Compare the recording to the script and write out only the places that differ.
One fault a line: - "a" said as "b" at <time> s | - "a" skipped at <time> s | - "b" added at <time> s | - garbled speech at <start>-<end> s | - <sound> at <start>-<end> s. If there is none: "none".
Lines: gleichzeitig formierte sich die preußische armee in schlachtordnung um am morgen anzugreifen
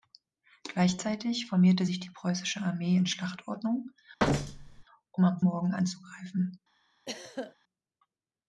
- thud at 4.2-4.8 s
- throat clearing at 7.1-7.6 s